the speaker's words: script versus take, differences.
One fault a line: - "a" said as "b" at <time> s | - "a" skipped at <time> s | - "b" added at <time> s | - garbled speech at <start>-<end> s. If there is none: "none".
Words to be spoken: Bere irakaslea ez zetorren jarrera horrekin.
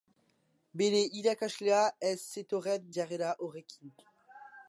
none